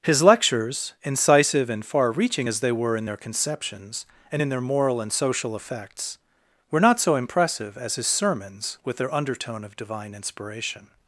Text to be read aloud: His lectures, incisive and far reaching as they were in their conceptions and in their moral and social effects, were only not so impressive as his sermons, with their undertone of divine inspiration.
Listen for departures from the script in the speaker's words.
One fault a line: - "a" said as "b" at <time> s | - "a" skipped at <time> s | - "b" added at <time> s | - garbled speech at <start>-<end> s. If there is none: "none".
- "only" skipped at 6.8 s